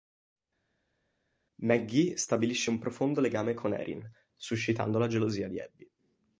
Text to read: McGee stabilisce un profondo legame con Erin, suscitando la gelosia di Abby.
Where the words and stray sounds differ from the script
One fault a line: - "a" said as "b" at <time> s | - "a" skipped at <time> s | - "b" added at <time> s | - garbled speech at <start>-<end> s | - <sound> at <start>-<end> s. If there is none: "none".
none